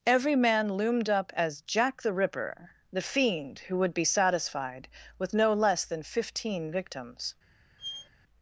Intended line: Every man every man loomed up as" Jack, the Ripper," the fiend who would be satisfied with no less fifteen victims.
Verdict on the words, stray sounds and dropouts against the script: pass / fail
fail